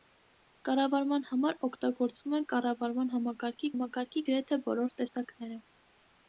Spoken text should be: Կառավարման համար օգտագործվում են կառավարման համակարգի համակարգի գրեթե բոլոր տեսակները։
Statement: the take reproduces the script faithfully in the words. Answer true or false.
true